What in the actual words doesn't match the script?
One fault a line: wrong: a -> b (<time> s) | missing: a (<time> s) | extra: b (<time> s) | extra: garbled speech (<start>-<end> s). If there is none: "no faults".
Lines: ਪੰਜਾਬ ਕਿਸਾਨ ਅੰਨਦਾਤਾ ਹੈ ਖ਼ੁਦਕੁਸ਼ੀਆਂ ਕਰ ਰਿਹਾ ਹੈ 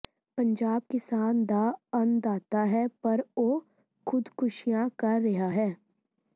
extra: ਦਾ (1.5 s)
extra: ਪਰ ਉਹ (3.0 s)